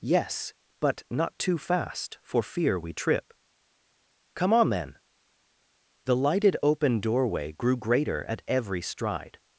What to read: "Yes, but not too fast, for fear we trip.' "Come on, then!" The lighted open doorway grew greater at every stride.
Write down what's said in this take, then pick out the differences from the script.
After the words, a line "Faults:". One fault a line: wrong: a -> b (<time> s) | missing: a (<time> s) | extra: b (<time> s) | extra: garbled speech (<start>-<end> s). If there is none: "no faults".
"Yes, but not too fast, for fear we trip.' "Come on, then!" The lighted open doorway grew greater at every stride.
Faults:
no faults